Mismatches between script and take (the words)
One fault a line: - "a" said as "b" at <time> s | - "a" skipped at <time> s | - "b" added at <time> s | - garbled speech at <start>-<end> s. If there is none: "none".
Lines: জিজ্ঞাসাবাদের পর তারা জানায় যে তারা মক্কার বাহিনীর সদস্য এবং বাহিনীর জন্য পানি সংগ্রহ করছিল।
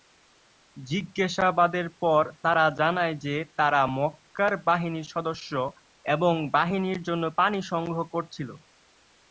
none